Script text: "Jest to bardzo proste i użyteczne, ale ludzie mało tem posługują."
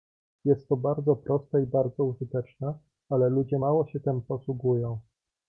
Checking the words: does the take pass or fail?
fail